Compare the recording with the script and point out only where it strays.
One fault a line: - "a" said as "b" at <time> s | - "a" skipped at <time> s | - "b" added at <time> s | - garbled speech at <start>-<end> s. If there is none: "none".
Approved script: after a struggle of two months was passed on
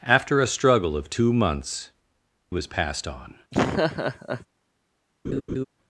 none